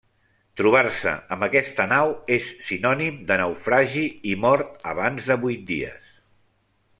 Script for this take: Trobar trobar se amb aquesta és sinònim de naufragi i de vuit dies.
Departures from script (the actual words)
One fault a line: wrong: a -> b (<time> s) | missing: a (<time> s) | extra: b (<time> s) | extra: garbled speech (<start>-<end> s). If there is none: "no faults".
missing: trobar (0.8 s)
extra: nau (1.9 s)
extra: mort abans (4.5 s)